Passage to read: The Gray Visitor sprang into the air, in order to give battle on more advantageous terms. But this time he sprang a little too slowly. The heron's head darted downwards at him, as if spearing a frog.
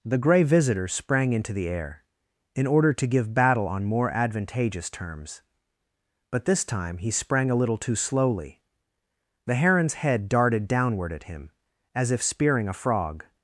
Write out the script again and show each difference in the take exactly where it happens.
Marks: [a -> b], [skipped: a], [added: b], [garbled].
The Gray Visitor sprang into the air, in order to give battle on more advantageous terms. But this time he sprang a little too slowly. The heron's head darted [downwards -> downward] at him, as if spearing a frog.